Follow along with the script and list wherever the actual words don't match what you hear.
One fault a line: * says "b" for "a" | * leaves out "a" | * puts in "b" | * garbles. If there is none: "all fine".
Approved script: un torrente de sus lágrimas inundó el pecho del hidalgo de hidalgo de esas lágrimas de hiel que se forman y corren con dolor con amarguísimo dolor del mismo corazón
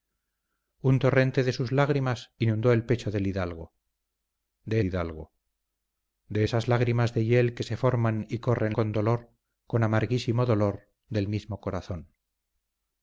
all fine